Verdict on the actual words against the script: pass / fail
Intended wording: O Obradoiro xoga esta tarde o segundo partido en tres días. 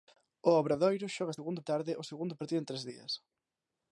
fail